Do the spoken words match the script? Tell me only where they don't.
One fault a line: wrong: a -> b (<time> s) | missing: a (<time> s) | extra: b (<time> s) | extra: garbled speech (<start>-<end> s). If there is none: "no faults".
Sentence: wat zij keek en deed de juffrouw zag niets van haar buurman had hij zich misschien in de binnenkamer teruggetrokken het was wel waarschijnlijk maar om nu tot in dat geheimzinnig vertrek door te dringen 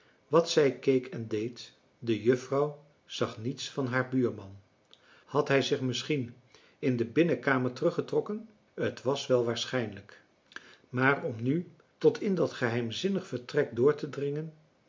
no faults